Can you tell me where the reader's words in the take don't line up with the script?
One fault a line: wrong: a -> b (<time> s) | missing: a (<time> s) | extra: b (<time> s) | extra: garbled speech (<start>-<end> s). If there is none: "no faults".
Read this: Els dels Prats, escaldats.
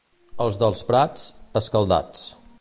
no faults